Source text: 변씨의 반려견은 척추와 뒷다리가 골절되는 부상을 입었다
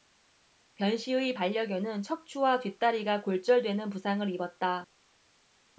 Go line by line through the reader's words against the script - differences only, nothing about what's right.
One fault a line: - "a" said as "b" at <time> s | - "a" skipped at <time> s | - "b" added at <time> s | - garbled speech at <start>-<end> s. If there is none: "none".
none